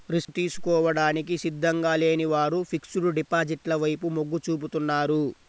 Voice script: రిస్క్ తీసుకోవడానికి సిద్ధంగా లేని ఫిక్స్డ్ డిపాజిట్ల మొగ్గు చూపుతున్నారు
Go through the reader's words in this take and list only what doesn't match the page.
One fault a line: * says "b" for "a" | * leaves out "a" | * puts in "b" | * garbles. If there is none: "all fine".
* puts in "వారు"
* puts in "వైపు"